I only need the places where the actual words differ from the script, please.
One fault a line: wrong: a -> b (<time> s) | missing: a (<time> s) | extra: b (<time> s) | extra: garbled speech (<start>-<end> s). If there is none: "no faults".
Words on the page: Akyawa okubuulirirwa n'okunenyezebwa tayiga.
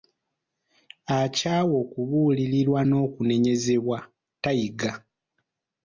no faults